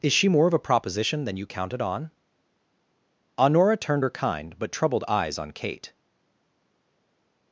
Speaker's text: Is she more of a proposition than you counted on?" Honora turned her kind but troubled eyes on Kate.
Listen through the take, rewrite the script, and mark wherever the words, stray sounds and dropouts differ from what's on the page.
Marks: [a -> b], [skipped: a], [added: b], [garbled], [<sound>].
Is she more of a proposition than you counted on?" Honora turned her kind but troubled eyes on Kate.